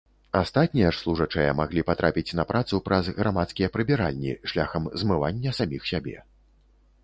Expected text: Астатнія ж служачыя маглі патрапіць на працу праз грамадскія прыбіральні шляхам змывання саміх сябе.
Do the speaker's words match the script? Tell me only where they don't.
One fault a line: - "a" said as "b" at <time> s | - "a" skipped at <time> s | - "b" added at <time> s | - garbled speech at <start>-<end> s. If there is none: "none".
none